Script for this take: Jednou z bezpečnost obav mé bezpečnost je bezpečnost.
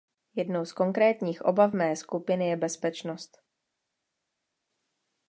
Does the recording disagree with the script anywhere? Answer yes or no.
yes